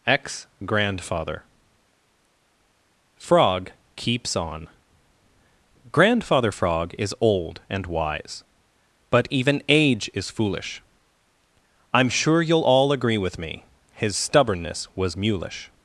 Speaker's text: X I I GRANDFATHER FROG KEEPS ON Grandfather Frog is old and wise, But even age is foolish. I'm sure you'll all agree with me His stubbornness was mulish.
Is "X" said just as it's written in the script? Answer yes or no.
no